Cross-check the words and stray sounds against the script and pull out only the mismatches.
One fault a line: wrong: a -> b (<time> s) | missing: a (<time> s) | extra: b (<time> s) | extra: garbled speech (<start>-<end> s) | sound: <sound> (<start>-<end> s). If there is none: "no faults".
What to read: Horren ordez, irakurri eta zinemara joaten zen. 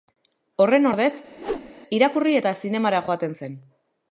sound: whoosh (1.4-1.7 s)